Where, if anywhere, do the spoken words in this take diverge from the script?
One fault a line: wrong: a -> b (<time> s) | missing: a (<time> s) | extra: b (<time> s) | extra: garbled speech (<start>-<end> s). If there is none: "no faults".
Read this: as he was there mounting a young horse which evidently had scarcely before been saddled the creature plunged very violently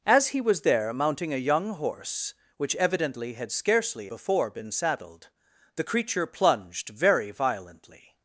no faults